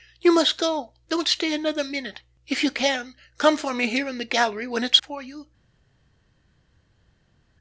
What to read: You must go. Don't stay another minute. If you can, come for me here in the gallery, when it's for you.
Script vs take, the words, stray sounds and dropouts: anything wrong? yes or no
no